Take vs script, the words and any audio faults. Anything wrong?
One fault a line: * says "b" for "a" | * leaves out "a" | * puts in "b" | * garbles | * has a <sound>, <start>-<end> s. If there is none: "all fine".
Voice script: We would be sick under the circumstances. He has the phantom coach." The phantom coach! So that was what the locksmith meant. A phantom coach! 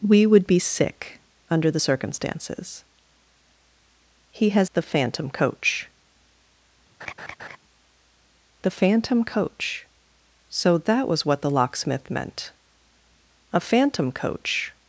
* has a laugh, 7.0-7.6 s